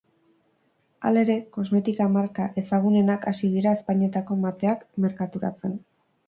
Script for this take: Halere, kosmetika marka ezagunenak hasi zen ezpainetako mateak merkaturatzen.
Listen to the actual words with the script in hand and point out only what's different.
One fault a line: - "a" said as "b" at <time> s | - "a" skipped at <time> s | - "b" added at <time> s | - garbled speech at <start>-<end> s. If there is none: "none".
- "zen" said as "dira" at 3.6 s